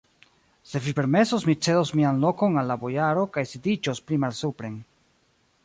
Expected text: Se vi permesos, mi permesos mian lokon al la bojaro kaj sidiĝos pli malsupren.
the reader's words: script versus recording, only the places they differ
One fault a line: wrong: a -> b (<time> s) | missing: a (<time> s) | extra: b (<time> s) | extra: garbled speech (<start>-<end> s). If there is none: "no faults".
wrong: permesos -> cedos (1.7 s)